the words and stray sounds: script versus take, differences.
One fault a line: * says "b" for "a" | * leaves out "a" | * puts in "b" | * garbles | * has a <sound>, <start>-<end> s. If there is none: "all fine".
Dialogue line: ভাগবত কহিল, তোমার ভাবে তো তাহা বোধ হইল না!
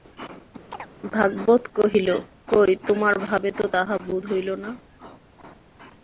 * has a chirp, 0.7-0.9 s
* puts in "কই"